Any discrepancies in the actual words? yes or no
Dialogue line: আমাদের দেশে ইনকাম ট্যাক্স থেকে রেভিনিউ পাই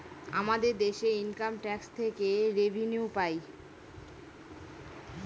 no